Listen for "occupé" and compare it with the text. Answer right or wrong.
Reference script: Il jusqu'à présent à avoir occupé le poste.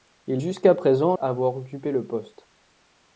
right